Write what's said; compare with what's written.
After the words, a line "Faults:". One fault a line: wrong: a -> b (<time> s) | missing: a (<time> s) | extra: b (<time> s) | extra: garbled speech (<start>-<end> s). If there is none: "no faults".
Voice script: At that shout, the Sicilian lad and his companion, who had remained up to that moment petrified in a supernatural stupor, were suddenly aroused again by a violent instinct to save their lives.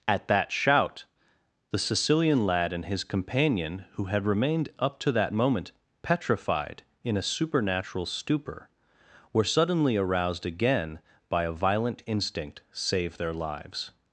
At that shout, the Sicilian lad and his companion, who had remained up to that moment petrified in a supernatural stupor, were suddenly aroused again by a violent instinct save their lives.
Faults:
missing: to (12.6 s)